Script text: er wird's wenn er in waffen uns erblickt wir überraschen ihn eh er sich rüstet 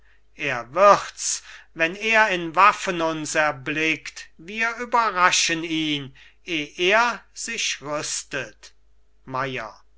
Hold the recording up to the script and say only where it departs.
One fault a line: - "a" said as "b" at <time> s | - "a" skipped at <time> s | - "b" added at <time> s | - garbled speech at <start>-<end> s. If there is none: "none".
none